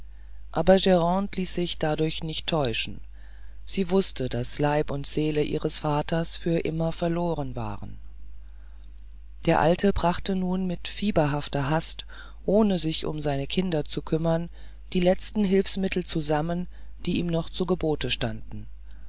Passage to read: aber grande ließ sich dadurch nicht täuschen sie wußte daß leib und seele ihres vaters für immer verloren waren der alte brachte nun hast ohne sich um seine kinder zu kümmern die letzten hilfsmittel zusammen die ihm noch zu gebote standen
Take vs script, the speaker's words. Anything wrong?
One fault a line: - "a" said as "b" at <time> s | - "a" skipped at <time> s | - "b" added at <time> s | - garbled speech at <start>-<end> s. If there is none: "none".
- "mit fieberhafter" added at 10.7 s